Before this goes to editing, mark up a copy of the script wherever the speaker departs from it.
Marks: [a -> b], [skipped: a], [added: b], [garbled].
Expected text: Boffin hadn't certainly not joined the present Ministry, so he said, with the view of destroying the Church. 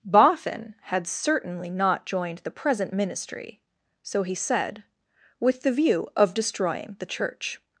Boffin [hadn't -> had] certainly not joined the present Ministry, so he said, with the view of destroying the Church.